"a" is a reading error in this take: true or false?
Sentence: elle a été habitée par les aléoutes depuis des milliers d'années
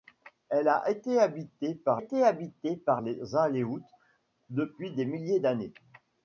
false